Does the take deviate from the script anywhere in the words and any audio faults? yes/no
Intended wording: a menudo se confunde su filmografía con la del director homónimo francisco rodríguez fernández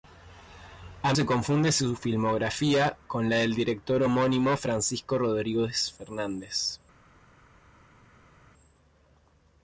yes